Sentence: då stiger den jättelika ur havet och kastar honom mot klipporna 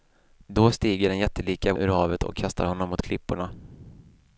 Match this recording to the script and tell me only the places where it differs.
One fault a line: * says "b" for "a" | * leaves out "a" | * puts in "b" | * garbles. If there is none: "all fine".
all fine